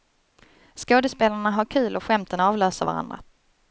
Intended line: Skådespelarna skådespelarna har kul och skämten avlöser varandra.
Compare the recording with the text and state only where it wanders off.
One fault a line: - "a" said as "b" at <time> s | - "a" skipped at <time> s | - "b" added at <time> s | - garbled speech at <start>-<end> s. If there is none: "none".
- "skådespelarna" skipped at 1.5 s